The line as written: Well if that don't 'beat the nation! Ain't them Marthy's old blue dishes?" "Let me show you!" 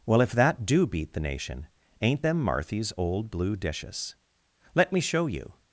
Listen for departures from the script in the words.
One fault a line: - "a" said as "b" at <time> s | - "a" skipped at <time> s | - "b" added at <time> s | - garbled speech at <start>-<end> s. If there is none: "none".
- "don't" said as "do" at 0.7 s